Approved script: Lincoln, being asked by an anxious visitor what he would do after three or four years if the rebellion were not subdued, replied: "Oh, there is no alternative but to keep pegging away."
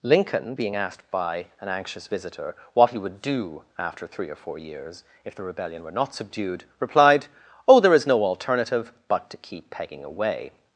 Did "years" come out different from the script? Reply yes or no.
no